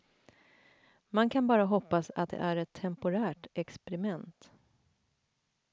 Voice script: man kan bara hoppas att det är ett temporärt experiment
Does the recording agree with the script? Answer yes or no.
yes